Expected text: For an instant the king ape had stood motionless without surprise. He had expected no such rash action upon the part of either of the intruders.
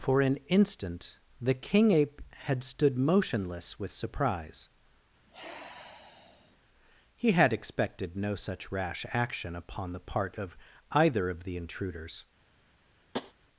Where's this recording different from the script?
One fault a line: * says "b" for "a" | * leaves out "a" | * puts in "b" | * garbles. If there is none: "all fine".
* says "with" for "without"